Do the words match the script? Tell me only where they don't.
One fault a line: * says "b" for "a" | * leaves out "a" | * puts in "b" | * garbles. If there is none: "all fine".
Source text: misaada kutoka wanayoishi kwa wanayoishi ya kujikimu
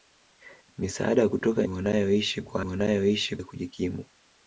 all fine